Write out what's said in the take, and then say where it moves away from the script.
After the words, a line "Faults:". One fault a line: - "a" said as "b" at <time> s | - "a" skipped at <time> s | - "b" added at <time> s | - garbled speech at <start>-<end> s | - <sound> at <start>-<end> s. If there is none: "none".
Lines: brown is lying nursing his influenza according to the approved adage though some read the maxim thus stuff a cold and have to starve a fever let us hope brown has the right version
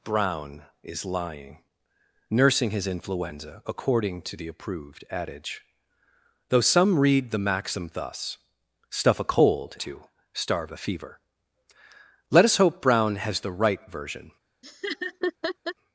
brown is lying nursing his influenza according to the approved adage though some read the maxim thus stuff a cold to starve a fever let us hope brown has the right version
Faults:
- "and have" skipped at 9.8 s
- laugh at 14.6-15.7 s